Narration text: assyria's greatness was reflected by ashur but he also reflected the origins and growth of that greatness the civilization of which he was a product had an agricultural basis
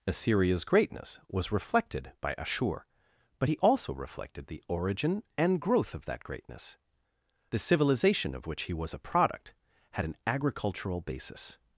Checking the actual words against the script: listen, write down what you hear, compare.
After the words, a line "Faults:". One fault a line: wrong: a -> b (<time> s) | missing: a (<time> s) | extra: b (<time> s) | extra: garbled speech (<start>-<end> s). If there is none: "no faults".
assyria's greatness was reflected by ashur but he also reflected the origin and growth of that greatness the civilization of which he was a product had an agricultural basis
Faults:
wrong: origins -> origin (4.7 s)